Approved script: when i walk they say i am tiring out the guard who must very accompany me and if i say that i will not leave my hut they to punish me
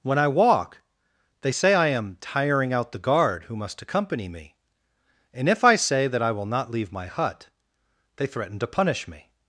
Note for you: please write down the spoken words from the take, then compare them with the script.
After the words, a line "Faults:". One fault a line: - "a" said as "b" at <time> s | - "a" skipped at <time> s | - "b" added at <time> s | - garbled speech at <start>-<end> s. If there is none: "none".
when i walk they say i am tiring out the guard who must accompany me and if i say that i will not leave my hut they threaten to punish me
Faults:
- "very" skipped at 3.8 s
- "threaten" added at 8.3 s